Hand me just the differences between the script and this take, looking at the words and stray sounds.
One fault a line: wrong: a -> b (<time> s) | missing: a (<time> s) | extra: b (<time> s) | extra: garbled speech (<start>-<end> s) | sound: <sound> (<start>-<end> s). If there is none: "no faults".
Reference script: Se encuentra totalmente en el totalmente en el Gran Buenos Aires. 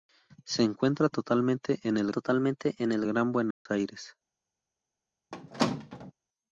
sound: dropout (3.5-3.7 s)
sound: squeak (5.3-6.1 s)